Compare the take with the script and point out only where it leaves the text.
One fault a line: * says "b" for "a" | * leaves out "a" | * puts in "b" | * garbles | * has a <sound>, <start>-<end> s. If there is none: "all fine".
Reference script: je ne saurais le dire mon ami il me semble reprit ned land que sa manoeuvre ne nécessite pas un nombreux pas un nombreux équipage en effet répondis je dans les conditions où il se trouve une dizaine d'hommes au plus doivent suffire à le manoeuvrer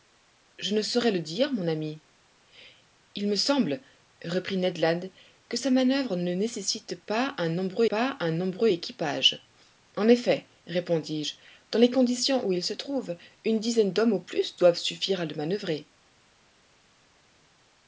all fine